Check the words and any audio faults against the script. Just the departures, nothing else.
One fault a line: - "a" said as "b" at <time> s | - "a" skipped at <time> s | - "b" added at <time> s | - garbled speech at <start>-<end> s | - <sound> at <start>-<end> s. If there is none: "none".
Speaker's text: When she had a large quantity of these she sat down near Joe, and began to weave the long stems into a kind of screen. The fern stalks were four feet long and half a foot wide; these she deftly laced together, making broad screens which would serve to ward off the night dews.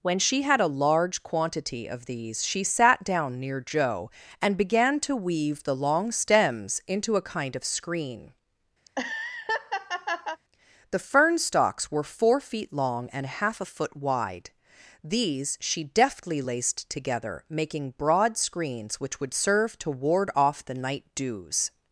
- laugh at 8.8-10.4 s